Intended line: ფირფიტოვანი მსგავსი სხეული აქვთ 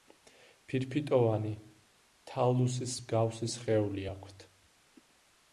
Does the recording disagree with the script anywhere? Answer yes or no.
yes